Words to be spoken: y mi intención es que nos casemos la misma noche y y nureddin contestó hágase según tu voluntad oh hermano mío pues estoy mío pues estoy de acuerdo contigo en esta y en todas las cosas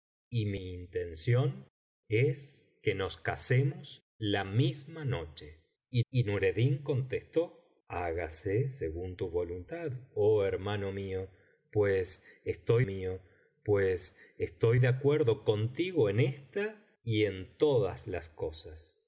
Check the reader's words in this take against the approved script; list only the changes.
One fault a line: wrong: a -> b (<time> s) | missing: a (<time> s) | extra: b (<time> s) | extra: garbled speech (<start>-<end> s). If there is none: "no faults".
no faults